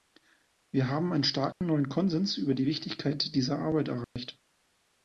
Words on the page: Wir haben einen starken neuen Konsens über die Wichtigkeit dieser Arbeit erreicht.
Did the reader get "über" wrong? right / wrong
right